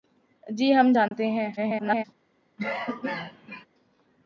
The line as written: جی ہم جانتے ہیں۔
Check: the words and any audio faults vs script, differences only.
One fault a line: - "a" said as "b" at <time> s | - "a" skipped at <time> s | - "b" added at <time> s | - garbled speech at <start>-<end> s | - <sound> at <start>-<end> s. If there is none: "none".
- dropout at 1.1-1.1 s
- garbled speech at 1.6-2.0 s
- cough at 2.6-3.7 s